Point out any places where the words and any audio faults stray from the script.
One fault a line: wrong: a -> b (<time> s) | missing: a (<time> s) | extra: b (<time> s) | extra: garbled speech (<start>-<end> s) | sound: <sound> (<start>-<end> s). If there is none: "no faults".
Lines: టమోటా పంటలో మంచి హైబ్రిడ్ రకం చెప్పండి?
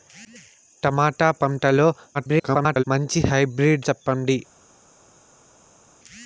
extra: garbled speech (2.1-2.8 s)
missing: రకం (3.9 s)